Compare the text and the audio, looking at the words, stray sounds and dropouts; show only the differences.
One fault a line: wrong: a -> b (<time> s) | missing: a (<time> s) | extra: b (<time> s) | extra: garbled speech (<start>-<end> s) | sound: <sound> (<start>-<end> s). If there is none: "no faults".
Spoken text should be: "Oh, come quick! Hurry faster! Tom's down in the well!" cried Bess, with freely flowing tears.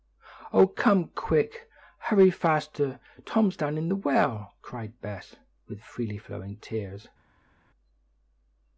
no faults